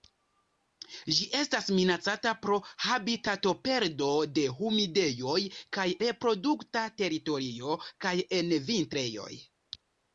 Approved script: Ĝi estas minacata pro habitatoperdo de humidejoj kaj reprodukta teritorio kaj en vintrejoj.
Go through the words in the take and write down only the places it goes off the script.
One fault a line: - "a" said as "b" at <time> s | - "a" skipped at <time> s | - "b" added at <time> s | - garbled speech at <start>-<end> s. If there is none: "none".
none